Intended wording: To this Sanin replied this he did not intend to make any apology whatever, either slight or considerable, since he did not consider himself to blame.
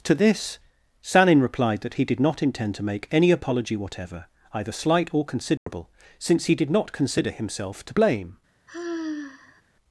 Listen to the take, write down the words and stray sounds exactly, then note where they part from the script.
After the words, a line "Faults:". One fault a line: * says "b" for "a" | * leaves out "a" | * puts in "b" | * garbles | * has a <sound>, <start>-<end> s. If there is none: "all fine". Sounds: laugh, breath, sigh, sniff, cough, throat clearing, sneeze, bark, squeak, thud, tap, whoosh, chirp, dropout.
To this Sanin replied that he did not intend to make any apology whatever, either slight or considerable, since he did not consider himself to blame.
Faults:
* says "that" for "this"
* has a dropout, 5.6-5.7 s
* has a sigh, 8.7-9.6 s